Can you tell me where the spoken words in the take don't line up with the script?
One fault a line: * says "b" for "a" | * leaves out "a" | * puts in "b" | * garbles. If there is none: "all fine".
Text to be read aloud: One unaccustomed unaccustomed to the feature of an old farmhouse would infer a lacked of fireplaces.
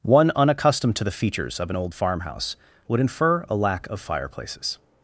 * leaves out "unaccustomed"
* says "features" for "feature"
* says "lack" for "lacked"